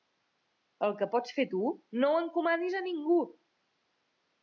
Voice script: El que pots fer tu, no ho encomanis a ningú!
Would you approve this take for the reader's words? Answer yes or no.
yes